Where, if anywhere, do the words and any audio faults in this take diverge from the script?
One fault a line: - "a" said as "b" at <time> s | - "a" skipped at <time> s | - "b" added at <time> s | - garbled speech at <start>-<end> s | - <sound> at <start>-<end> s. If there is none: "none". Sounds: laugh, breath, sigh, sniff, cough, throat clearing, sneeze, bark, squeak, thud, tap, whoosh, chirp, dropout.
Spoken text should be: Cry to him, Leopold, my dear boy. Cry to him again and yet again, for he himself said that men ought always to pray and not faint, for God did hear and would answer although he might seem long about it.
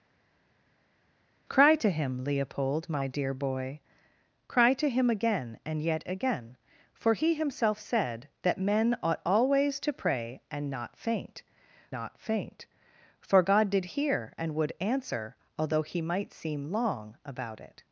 - "not faint" added at 11.9 s